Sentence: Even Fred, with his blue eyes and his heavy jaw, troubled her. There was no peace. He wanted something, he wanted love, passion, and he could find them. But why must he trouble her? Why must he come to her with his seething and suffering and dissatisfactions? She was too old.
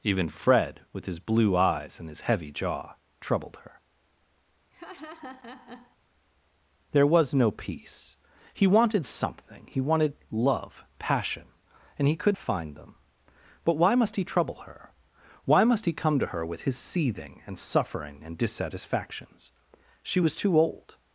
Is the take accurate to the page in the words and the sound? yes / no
no